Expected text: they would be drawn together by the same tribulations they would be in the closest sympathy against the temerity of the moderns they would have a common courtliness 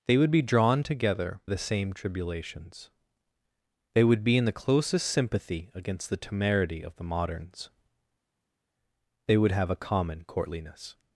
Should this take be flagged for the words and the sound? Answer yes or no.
yes